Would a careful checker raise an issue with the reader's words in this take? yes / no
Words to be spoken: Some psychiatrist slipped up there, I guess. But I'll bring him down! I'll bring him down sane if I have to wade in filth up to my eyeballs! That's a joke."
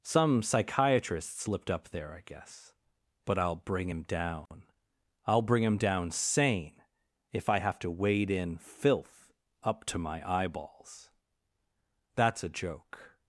no